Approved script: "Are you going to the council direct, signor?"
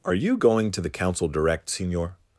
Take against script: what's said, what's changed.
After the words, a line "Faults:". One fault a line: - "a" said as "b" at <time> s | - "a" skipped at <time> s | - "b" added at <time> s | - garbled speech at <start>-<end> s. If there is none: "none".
"Are you going to the council direct, signor?"
Faults:
none